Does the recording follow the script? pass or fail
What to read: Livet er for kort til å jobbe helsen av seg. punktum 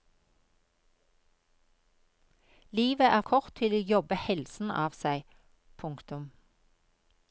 fail